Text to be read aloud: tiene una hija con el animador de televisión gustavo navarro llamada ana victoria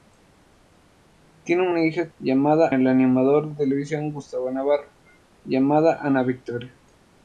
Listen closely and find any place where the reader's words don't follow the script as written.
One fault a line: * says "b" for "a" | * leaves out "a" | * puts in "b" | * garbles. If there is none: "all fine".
* says "llamada" for "con"